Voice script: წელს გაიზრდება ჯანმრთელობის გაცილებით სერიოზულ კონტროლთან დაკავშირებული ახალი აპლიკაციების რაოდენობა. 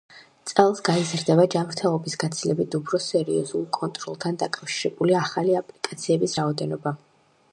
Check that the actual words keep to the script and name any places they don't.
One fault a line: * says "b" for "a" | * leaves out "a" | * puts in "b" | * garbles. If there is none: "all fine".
* puts in "უფრო"